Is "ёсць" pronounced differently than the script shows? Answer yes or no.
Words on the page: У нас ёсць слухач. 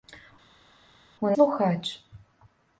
yes